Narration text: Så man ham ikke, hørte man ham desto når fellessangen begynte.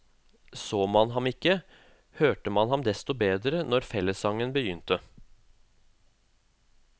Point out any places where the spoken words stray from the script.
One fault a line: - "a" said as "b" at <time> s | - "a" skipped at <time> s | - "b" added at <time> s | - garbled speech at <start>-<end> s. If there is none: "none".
- "bedre" added at 3.1 s